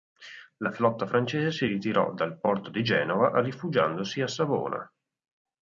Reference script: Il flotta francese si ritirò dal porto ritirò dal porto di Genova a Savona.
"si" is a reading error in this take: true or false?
false